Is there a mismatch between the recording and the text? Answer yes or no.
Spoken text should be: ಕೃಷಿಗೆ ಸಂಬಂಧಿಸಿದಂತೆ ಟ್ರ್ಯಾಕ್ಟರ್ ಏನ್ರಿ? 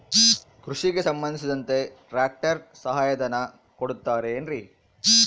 yes